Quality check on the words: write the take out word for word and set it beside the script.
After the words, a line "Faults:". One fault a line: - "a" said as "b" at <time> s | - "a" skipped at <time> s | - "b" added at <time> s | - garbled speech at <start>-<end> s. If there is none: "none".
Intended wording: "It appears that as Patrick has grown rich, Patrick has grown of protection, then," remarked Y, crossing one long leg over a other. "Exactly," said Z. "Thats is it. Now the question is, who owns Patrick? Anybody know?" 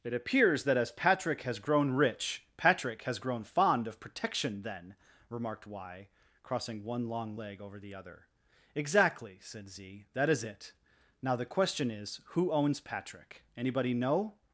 "It appears that as Patrick has grown rich, Patrick has grown fond of protection, then," remarked Y, crossing one long leg over the other. "Exactly," said Z. "That is it. Now the question is, who owns Patrick? Anybody know?"
Faults:
- "fond" added at 3.4 s
- "a" said as "the" at 7.8 s
- "Thats" said as "That" at 10.1 s